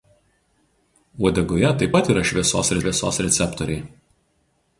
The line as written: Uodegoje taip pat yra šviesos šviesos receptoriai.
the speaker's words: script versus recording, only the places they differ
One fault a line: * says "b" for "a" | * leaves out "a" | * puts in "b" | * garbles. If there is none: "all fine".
all fine